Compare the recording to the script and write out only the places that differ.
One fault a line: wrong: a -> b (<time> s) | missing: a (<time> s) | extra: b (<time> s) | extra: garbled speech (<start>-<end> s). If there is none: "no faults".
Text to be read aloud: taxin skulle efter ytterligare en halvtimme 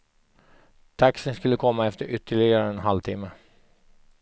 extra: komma (1.6 s)